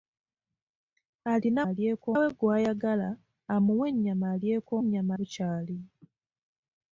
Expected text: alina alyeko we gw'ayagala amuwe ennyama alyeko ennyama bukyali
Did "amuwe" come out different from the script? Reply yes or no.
no